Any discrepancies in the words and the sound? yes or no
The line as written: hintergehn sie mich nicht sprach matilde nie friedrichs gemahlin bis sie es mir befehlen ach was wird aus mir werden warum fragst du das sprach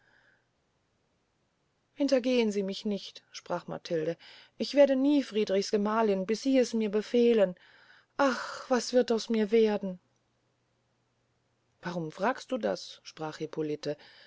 yes